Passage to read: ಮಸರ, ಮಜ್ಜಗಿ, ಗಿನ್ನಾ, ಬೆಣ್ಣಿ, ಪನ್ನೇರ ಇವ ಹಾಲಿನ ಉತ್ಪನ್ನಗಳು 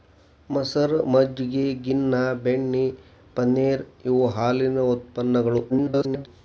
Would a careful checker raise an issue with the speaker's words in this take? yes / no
yes